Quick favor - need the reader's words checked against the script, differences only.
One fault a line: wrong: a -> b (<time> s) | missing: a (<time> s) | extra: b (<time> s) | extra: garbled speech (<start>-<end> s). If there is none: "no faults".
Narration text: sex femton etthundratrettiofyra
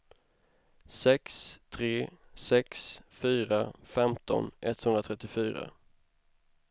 extra: tre sex fyra (1.7 s)